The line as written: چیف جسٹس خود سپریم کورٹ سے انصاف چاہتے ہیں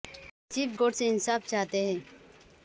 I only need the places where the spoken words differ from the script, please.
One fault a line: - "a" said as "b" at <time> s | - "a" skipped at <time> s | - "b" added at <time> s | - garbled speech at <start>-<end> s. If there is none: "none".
- "جسٹس خود سپریم" skipped at 0.7 s